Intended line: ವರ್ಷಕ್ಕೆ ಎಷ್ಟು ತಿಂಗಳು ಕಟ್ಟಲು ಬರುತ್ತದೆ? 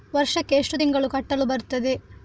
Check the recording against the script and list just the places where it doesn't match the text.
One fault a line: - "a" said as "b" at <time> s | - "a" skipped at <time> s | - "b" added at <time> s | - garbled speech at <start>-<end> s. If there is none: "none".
none